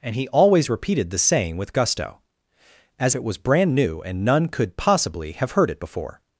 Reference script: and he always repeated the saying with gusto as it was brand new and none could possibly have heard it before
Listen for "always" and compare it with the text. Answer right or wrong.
right